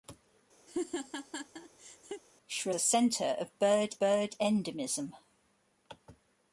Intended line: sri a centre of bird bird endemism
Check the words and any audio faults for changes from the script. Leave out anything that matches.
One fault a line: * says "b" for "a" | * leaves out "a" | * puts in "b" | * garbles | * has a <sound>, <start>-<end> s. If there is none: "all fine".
* has a laugh, 0.7-2.2 s